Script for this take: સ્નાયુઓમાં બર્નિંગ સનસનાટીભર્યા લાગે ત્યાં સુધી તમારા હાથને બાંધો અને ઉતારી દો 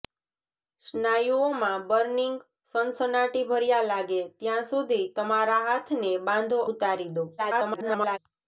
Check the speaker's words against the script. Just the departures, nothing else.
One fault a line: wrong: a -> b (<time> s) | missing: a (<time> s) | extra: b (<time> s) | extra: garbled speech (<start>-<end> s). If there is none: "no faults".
missing: અને (6.6 s)
extra: garbled speech (7.4-8.2 s)